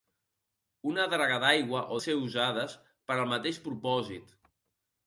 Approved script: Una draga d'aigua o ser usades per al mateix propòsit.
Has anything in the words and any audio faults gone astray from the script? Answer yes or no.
no